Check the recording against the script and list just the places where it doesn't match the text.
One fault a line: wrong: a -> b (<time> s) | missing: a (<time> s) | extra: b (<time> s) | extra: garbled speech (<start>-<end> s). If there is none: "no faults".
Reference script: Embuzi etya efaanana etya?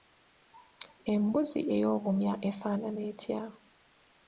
wrong: etya -> ey'obumya (1.7 s)